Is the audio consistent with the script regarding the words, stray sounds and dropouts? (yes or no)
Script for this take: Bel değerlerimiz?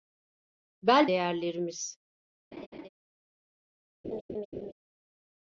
no